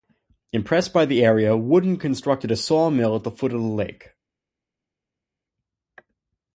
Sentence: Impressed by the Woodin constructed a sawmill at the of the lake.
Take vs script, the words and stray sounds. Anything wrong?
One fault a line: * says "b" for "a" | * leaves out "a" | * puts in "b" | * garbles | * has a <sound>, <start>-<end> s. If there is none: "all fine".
* puts in "area"
* puts in "foot"